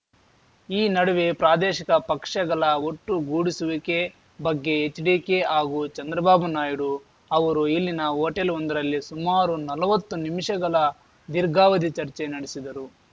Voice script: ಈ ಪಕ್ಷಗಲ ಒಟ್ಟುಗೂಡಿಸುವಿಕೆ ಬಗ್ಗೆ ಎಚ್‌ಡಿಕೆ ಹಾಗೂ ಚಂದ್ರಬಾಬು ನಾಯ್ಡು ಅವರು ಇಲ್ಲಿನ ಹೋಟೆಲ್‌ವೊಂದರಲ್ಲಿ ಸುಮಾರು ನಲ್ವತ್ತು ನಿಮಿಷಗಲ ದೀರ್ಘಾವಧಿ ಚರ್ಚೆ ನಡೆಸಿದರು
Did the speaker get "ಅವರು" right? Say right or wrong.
right